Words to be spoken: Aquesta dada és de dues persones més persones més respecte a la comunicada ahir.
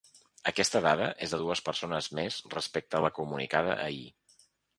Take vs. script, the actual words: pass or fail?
fail